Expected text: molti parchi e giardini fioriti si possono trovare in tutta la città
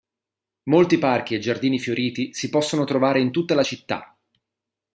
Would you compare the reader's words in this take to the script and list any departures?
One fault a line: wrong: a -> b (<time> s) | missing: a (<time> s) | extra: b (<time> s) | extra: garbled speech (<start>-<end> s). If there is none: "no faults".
no faults